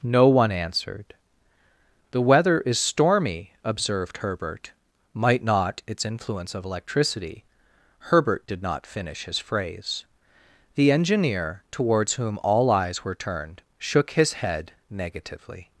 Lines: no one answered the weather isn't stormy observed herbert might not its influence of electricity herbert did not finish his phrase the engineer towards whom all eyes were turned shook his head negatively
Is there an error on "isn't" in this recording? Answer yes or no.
yes